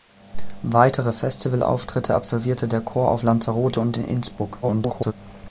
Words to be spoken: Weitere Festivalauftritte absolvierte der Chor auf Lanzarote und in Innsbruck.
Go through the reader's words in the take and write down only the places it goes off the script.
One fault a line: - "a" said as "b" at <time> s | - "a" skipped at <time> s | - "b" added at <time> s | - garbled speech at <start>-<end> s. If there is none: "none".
- garbled speech at 4.6-5.1 s